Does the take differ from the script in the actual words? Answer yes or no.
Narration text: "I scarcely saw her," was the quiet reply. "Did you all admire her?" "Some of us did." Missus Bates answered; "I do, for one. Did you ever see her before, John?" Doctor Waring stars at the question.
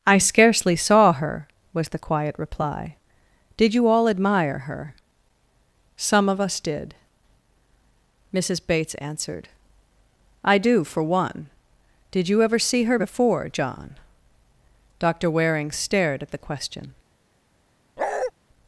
yes